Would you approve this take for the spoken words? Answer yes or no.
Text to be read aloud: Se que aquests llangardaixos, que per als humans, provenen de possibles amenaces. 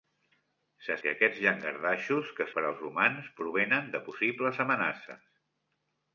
yes